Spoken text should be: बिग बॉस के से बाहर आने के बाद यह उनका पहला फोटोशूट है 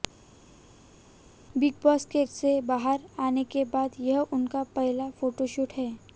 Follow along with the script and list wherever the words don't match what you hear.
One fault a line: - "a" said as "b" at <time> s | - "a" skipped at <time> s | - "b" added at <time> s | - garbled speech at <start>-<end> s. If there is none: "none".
none